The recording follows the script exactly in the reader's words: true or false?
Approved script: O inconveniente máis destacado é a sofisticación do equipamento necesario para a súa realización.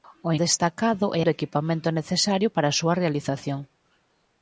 false